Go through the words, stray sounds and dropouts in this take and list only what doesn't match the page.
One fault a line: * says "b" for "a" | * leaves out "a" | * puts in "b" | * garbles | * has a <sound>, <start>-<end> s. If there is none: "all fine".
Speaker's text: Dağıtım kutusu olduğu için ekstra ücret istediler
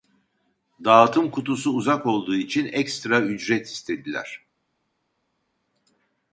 * puts in "uzak"